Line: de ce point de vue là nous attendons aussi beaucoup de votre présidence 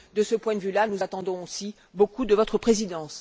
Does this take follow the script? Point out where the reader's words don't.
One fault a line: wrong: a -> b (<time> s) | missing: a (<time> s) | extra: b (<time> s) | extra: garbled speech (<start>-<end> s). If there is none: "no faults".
no faults